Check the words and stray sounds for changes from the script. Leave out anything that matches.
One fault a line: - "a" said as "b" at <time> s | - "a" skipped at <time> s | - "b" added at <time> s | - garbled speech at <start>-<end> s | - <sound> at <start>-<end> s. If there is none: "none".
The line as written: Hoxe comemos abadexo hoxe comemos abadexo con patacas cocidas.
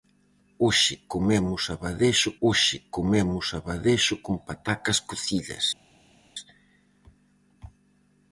none